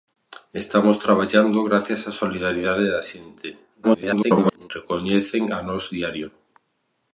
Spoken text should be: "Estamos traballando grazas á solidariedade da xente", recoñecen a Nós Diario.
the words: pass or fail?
fail